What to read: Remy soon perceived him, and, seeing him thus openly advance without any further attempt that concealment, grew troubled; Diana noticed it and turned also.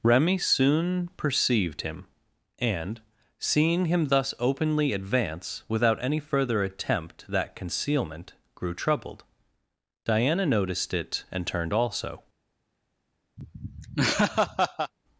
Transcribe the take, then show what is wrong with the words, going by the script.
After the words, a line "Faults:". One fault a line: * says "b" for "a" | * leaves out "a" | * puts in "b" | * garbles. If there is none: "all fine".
Remy soon perceived him, and, seeing him thus openly advance without any further attempt that concealment, grew troubled; Diana noticed it and turned also.
Faults:
all fine